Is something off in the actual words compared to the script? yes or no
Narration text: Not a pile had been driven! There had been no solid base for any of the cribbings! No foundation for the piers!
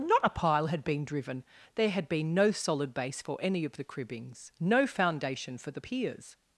no